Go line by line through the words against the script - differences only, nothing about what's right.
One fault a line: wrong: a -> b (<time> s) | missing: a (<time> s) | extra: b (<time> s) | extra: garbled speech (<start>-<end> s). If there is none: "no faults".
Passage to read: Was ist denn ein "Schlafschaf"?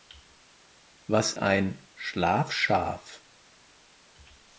missing: ist denn (1.3 s)